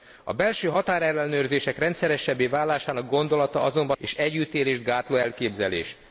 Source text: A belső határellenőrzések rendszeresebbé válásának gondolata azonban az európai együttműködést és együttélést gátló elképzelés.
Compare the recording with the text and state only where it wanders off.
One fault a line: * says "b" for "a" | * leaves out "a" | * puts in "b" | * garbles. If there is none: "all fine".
* leaves out "az európai együttműködést"